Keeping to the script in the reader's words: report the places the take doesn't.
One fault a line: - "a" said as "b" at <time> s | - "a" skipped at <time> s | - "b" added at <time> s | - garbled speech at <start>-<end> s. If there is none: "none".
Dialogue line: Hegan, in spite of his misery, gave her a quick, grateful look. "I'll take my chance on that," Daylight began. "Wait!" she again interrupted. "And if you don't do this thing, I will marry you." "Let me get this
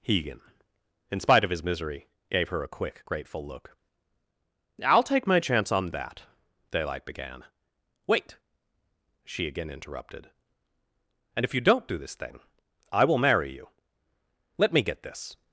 none